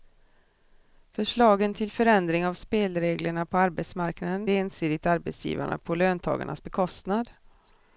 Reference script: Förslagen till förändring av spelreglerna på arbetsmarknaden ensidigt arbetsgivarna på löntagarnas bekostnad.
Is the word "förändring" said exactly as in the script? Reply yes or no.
yes